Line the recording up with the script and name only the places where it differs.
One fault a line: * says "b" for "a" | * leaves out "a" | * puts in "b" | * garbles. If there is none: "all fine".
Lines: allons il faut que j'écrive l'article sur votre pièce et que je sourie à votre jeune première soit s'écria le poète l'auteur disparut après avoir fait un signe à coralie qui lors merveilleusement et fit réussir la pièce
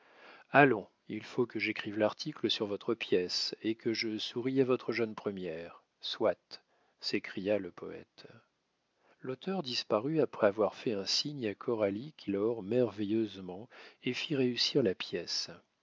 all fine